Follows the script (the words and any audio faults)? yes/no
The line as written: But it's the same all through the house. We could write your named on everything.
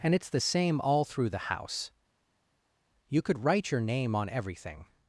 no